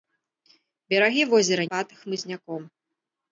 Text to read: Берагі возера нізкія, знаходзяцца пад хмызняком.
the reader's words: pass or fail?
fail